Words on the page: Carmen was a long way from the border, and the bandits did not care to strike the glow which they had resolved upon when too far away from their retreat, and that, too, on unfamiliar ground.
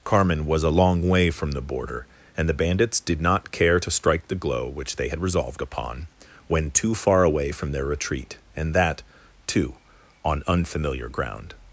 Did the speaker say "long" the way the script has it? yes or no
yes